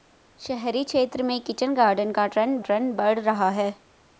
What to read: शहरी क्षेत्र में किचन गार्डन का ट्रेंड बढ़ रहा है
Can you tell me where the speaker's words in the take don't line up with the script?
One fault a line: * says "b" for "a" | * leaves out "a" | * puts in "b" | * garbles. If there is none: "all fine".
* puts in "ट्रेंड"